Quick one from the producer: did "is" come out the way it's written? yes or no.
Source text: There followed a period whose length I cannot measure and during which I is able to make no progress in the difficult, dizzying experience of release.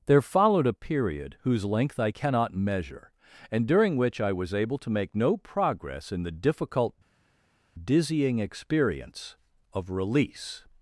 no